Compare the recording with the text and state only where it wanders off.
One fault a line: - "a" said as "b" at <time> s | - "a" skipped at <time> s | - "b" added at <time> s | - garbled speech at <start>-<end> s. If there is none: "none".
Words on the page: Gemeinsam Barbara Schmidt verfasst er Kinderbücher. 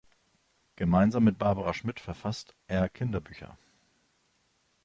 - "mit" added at 1.2 s